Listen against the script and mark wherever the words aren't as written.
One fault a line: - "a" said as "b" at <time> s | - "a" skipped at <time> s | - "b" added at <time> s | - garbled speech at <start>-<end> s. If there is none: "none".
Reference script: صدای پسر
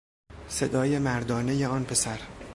- "مردانهی آن" added at 1.0 s